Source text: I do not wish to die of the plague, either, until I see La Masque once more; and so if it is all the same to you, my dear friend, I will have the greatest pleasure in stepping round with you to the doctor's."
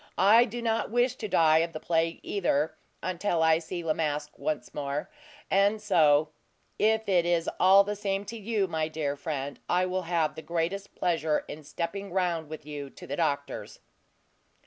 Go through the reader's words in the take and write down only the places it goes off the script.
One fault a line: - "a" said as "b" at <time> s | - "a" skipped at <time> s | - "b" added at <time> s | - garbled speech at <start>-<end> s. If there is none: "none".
none